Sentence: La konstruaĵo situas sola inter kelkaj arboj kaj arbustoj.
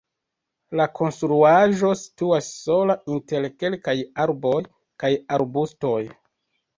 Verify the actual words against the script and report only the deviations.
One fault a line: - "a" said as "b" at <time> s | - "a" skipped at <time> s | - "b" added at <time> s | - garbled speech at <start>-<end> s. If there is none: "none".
none